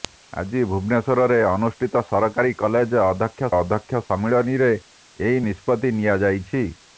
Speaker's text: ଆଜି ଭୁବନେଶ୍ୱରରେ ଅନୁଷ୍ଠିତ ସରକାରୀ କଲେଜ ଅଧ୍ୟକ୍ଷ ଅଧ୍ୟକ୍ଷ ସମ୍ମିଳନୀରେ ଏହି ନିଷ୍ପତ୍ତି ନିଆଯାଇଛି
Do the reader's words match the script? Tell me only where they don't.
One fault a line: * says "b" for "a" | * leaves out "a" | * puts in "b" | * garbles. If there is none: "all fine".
all fine